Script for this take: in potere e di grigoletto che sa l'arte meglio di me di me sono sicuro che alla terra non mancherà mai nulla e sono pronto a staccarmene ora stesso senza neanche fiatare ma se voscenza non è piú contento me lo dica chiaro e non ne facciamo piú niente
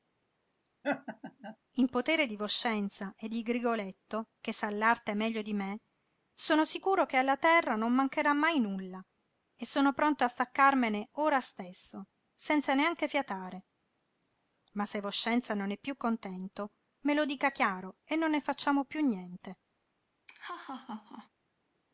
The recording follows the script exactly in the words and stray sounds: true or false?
false